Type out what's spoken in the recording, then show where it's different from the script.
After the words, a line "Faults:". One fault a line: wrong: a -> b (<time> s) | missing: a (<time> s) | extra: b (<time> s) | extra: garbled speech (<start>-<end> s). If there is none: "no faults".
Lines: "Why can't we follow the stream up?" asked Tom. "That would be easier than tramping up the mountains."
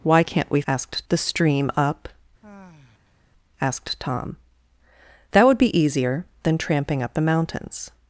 "Why can't we asked the stream up?" asked Tom. "That would be easier than tramping up the mountains."
Faults:
wrong: follow -> asked (0.7 s)